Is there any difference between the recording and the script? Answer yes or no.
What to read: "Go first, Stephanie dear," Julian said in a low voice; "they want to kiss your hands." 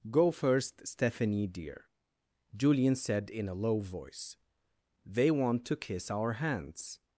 yes